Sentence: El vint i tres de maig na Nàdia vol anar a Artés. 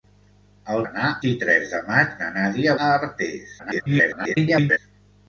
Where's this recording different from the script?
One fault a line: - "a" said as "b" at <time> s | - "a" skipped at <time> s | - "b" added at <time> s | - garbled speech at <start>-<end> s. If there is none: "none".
- "vint" said as "anar" at 0.8 s
- "vol anar" skipped at 2.8 s
- garbled speech at 3.6-4.8 s